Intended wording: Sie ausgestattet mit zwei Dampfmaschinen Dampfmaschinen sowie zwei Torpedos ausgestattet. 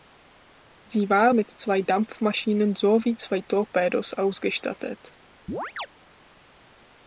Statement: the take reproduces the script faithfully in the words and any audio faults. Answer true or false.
false